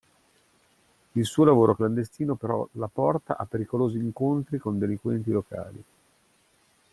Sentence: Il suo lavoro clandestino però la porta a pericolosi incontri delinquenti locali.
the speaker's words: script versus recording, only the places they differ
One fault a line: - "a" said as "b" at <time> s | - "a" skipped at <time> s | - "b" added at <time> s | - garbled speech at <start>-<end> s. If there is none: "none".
- "con" added at 4.6 s